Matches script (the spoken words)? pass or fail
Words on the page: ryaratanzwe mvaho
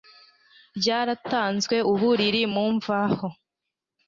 fail